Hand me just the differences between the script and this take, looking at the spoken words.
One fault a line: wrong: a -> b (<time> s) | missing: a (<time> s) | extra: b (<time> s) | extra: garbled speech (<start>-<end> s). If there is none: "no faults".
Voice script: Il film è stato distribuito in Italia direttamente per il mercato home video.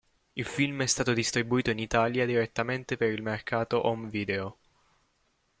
no faults